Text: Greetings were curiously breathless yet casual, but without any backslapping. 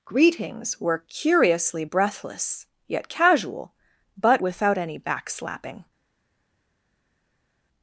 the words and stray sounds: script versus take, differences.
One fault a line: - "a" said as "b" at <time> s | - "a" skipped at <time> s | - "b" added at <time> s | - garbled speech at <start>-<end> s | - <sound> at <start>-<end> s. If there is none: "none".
none